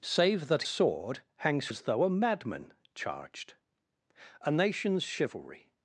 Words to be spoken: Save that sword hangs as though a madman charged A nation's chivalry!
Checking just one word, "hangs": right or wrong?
right